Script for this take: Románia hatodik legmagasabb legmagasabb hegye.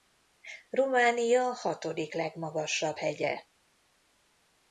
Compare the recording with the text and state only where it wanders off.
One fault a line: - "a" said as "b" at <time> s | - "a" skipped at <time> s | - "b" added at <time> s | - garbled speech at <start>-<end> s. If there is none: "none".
- "legmagasabb" skipped at 3.0 s